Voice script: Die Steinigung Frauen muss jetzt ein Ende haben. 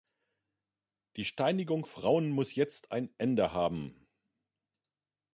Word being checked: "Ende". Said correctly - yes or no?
yes